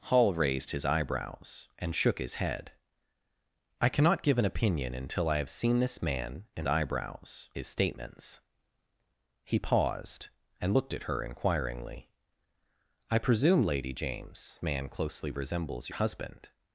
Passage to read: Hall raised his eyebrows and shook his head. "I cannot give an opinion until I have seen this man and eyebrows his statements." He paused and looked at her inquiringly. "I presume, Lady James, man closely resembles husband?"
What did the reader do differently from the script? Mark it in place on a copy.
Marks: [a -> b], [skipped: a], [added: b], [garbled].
Hall raised his eyebrows and shook his head. "I cannot give an opinion until I have seen this man and eyebrows his statements." He paused and looked at her inquiringly. "I presume, Lady James, man closely resembles husband?"